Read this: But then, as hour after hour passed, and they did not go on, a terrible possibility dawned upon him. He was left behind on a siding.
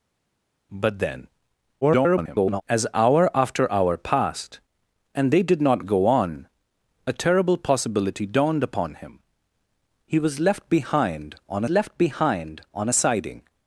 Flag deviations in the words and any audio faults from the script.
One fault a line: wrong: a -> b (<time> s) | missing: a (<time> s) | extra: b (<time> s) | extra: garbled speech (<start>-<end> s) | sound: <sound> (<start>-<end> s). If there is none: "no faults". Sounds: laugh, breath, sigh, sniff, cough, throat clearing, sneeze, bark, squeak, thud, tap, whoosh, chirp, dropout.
extra: garbled speech (1.8-2.6 s)
extra: left behind on (11.7 s)